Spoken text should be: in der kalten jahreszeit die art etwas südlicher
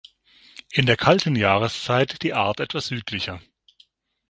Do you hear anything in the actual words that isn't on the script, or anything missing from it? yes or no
no